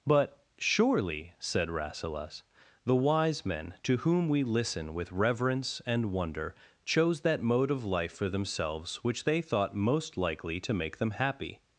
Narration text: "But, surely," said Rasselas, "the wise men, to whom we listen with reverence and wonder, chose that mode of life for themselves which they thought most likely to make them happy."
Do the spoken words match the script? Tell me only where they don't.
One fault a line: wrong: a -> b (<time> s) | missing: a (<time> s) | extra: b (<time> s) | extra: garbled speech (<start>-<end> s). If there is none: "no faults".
no faults